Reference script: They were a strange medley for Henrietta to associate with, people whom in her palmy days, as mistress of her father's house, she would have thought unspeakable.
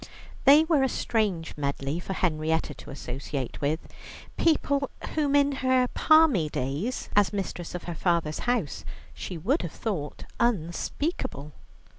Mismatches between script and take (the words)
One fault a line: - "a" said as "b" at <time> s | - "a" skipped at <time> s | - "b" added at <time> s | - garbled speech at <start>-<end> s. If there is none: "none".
none